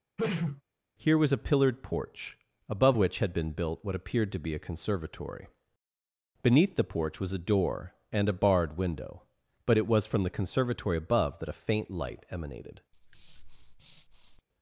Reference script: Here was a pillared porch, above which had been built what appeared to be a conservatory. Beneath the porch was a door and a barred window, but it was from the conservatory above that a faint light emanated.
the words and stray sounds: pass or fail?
fail